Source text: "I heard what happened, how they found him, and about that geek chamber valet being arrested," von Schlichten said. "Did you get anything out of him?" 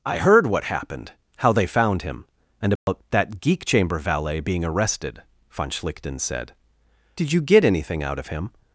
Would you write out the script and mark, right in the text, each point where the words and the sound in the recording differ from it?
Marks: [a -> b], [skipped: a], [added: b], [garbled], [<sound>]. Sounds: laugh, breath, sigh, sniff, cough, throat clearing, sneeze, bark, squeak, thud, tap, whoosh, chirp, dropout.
"I heard what happened, how they found him, and about [dropout] that geek chamber valet being arrested," von Schlichten said. "Did you get anything out of him?"